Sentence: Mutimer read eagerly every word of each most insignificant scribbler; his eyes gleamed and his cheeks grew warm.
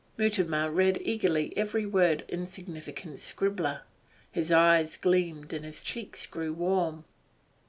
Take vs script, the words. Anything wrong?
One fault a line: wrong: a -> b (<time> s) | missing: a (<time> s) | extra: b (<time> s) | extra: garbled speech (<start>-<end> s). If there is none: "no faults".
missing: of each most (2.2 s)